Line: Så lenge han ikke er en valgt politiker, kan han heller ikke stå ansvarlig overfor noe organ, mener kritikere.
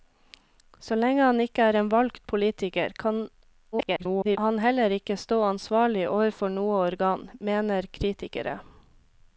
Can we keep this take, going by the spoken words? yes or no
no